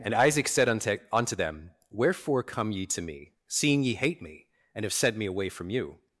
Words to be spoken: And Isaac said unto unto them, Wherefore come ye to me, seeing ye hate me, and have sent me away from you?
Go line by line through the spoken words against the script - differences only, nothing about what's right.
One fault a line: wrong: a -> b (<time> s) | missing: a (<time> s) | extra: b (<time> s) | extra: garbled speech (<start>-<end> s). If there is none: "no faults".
no faults